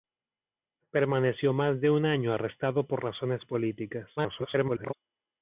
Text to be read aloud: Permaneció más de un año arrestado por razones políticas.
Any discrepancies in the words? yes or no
yes